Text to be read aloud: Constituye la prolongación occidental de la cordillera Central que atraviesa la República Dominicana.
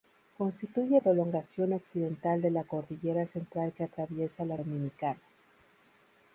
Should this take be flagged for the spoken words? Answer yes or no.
yes